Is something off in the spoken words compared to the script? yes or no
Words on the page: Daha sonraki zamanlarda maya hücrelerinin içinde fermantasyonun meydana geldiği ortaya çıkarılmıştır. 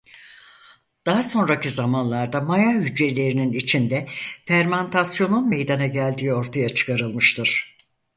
no